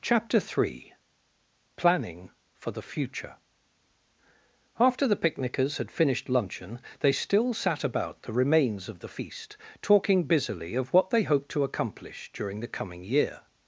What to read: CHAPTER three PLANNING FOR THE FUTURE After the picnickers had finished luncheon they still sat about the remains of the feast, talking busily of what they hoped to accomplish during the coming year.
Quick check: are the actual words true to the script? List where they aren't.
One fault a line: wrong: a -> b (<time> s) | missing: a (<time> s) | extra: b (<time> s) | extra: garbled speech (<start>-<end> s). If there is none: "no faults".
no faults